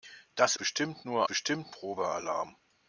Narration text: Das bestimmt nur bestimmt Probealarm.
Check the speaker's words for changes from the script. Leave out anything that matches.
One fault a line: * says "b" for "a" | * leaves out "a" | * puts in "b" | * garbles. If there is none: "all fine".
all fine